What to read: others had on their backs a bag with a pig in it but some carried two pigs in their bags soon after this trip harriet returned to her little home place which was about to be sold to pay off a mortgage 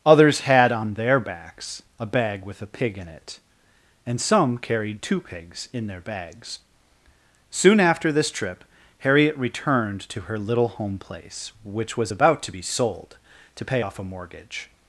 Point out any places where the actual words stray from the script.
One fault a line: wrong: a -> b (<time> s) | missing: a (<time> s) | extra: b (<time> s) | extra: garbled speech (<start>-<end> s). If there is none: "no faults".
wrong: but -> and (4.0 s)